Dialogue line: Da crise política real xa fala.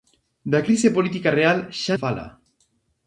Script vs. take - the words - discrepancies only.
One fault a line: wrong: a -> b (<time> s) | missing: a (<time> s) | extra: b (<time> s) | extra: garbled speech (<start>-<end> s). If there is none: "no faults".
no faults